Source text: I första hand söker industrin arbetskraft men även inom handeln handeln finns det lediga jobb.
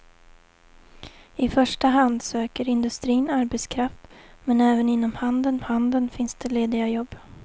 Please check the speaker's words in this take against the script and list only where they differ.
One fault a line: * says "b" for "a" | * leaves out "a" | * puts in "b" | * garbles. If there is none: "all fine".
all fine